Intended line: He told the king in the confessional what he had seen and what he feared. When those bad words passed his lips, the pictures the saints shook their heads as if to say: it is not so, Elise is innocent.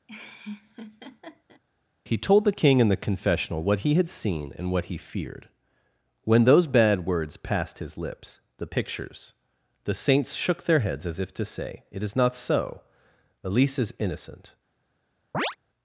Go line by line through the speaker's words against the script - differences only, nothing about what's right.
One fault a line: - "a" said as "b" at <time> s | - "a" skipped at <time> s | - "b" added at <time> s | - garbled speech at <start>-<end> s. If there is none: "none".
none